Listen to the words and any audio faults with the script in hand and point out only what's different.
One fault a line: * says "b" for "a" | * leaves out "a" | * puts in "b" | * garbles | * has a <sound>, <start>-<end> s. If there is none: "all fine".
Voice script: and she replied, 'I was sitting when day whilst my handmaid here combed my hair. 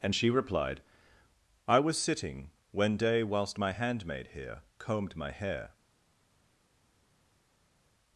all fine